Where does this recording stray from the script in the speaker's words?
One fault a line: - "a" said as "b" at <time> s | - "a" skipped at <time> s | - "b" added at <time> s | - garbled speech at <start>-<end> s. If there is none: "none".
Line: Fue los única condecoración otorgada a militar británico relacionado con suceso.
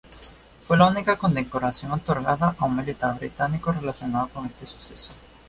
- "los" said as "la" at 0.7 s
- "un" added at 2.6 s
- "este" added at 4.4 s